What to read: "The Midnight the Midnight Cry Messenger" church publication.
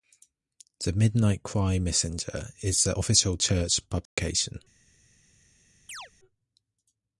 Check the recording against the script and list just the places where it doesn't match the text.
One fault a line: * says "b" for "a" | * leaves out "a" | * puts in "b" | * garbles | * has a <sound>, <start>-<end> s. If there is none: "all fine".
* says "Cry Messenger is the official" for "the Midnight Cry Messenger"
* has a dropout, 4.1-4.2 s
* has a chirp, 5.9-6.1 s